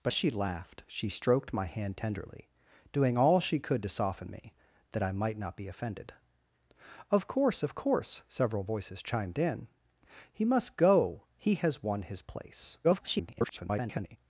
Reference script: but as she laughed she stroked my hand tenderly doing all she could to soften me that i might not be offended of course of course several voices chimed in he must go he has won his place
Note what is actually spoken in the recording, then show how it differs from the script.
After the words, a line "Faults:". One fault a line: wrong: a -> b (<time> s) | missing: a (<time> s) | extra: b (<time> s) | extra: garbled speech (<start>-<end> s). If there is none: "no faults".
but she laughed she stroked my hand tenderly doing all she could to soften me that i might not be offended of course of course several voices chimed in he must go he has won his place [garbled]
Faults:
missing: as (0.1 s)
extra: garbled speech (12.8-14.2 s)